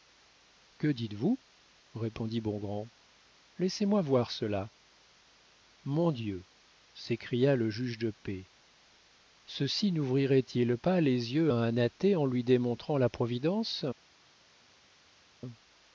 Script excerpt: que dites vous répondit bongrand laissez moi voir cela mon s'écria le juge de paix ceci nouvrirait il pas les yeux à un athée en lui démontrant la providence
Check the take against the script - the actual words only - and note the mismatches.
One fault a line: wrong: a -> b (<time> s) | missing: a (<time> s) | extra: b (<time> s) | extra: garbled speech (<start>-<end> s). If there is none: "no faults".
extra: dieu (6.1 s)